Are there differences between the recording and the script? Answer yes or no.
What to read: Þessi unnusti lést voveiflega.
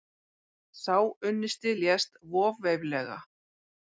yes